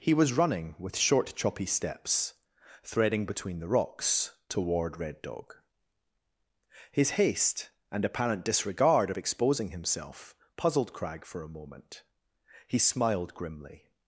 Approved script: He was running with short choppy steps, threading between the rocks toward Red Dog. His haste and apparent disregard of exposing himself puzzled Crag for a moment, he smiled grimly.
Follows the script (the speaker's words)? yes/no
yes